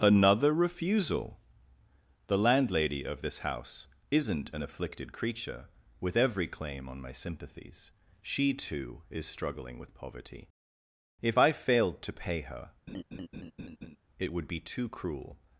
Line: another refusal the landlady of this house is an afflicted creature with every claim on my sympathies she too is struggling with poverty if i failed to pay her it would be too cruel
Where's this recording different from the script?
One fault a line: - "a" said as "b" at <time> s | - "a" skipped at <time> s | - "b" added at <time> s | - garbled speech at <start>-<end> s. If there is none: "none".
- "is" said as "isn't" at 4.1 s